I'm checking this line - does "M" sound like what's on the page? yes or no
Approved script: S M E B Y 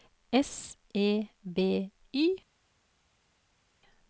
no